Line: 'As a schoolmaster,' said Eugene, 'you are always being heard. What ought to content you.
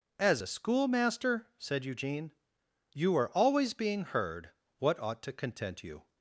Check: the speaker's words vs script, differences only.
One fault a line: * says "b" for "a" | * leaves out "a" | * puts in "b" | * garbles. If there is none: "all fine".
all fine